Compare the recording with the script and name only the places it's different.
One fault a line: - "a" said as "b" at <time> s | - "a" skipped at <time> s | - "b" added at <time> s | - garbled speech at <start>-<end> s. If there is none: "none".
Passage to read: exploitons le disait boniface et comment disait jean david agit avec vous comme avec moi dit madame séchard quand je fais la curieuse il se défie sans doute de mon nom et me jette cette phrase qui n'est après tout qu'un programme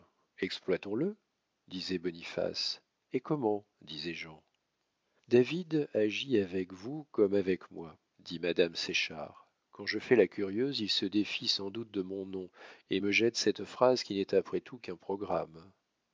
none